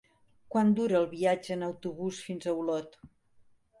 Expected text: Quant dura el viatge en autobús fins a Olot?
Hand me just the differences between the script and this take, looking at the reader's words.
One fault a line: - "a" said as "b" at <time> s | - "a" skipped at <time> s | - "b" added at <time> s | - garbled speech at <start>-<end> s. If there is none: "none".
none